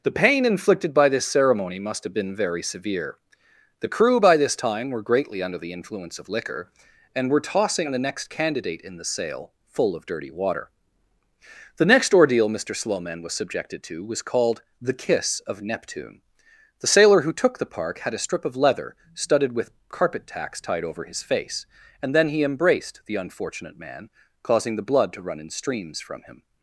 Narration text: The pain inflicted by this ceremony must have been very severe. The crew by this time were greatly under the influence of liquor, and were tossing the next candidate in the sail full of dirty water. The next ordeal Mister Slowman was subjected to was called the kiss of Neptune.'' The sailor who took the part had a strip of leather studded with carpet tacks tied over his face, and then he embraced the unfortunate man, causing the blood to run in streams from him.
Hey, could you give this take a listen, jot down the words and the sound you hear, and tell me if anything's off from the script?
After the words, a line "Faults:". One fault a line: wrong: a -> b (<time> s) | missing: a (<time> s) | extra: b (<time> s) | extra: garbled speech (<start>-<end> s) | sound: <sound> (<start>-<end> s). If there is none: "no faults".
The pain inflicted by this ceremony must have been very severe. The crew by this time were greatly under the influence of liquor, and were tossing the next candidate in the sail full of dirty water. The next ordeal Mister Slowman was subjected to was called the kiss of Neptune.'' The sailor who took the park had a strip of leather studded with carpet tacks tied over his face, and then he embraced the unfortunate man, causing the blood to run in streams from him.
Faults:
wrong: part -> park (17.6 s)